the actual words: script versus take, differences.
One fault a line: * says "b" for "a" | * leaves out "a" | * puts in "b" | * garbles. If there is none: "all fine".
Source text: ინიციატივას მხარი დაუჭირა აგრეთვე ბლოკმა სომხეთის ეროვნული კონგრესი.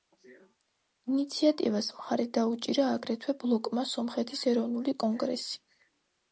all fine